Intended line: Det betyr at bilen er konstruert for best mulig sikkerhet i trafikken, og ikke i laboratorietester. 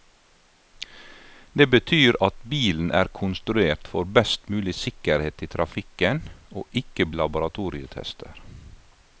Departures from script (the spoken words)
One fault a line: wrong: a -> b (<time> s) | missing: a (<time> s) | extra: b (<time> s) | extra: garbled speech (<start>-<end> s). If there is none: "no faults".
no faults